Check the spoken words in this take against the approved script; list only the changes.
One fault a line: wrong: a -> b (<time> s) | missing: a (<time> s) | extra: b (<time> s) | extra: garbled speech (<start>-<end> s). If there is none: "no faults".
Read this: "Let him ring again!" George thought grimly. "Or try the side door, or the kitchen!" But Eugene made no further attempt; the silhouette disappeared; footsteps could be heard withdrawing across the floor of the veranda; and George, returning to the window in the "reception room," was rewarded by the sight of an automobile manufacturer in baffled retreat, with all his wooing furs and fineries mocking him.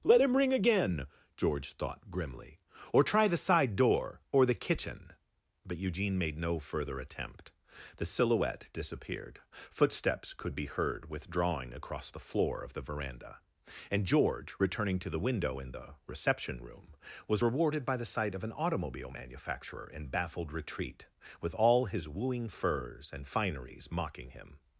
no faults